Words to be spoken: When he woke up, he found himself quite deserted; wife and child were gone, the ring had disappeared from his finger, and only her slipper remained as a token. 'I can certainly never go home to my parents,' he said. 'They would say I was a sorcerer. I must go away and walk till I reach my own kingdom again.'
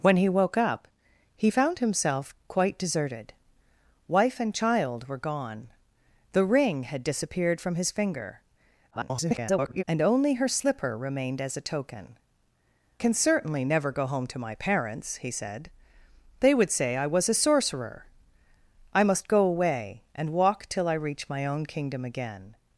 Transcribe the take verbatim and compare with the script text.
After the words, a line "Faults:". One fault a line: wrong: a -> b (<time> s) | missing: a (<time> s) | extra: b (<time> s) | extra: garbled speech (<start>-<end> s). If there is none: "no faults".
When he woke up, he found himself quite deserted; wife and child were gone, the ring had disappeared from his finger, [garbled] and only her slipper remained as a token. 'can certainly never go home to my parents,' he said. 'They would say I was a sorcerer. I must go away and walk till I reach my own kingdom again.'
Faults:
extra: garbled speech (8.9-9.8 s)
missing: I (12.2 s)